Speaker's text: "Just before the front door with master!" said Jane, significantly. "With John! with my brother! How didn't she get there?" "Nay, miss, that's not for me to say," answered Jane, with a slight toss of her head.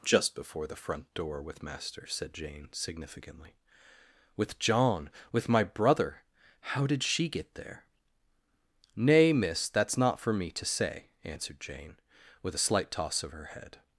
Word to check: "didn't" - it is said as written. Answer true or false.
false